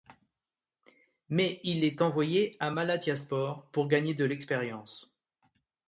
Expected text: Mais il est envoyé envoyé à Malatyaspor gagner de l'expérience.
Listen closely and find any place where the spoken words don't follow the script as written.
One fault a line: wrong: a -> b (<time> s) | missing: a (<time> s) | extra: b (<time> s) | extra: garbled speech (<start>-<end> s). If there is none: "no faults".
missing: envoyé (2.6 s)
extra: pour (3.7 s)